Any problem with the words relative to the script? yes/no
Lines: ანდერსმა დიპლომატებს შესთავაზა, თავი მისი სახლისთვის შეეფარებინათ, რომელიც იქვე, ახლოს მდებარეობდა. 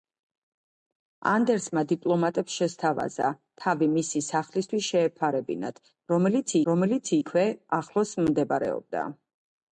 yes